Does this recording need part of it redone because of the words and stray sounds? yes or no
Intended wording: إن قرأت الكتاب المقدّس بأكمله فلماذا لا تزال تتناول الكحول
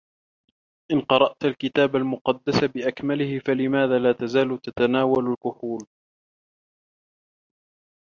no